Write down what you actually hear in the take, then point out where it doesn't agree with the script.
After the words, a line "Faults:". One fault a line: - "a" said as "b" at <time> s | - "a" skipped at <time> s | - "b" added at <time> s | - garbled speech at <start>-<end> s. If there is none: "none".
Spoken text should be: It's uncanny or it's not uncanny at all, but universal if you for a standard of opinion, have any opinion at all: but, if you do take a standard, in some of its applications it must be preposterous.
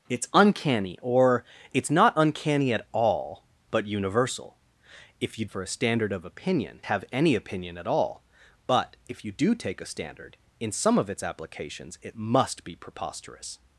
It's uncanny or it's not uncanny at all, but universal if you for a standard of opinion, have any opinion at all: but, if you do take a standard, in some of its applications it must be preposterous.
Faults:
none